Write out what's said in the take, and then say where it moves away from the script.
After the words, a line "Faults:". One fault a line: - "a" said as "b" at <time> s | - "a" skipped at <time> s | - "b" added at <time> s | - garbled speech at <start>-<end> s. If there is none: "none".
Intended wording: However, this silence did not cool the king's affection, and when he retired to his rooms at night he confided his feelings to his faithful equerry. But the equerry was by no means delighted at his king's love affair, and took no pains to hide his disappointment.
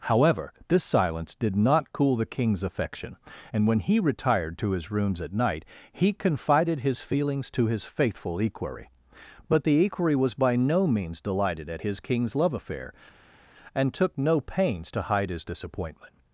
However, this silence did not cool the king's affection, and when he retired to his rooms at night he confided his feelings to his faithful equerry. But the equerry was by no means delighted at his king's love affair, and took no pains to hide his disappointment.
Faults:
none